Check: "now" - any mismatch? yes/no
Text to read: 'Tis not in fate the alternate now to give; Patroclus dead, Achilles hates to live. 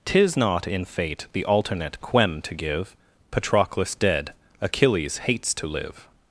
yes